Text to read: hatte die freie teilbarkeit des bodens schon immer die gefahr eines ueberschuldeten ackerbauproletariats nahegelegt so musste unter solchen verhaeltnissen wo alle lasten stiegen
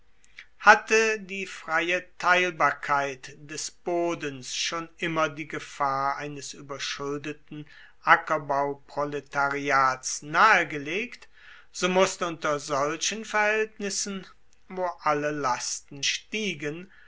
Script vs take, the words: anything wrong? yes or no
no